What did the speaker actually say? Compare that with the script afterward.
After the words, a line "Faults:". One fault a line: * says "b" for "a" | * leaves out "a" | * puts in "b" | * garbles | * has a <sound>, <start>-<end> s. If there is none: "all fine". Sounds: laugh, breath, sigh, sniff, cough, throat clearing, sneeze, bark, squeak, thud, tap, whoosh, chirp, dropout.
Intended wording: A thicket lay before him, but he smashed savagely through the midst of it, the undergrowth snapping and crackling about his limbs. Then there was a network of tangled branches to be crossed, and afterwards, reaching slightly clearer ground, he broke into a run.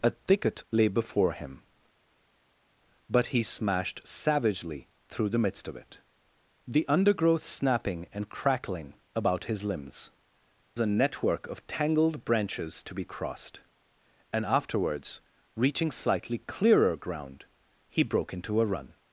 A thicket lay before him, but he smashed savagely through the midst of it, the undergrowth snapping and crackling about his limbs. A network of tangled branches to be crossed, and afterwards, reaching slightly clearer ground, he broke into a run.
Faults:
* leaves out "Then there was"